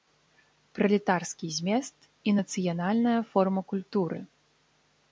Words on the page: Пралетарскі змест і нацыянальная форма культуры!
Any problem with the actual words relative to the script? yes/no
no